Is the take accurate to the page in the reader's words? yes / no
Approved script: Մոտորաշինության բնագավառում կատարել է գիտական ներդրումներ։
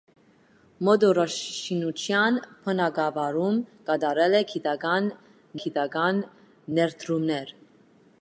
no